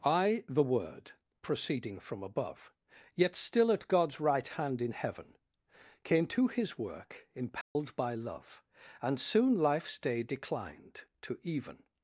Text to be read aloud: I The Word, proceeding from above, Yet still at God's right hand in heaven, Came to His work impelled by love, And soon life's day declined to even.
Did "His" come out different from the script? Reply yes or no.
no